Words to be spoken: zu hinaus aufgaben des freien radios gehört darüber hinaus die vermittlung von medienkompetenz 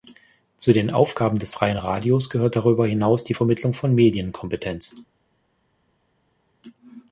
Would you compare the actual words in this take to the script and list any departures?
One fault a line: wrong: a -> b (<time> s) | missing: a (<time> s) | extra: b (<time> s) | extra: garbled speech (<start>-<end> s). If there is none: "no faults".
wrong: hinaus -> den (0.7 s)